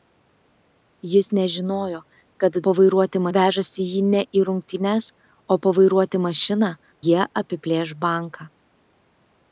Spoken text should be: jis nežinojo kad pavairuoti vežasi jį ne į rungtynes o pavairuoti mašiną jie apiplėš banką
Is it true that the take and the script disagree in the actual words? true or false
false